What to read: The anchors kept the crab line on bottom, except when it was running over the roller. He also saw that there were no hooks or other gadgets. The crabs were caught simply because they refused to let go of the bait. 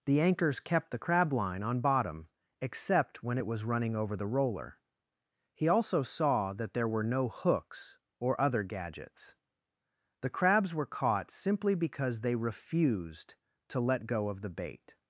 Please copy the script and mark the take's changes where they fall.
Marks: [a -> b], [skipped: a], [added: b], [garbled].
The anchors kept the crab line on bottom, except when it was running over the roller. He also saw that there were no hooks or other gadgets. The crabs were caught simply because they refused to let go of the bait.